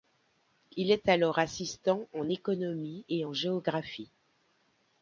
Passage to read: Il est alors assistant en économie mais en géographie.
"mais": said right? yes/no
no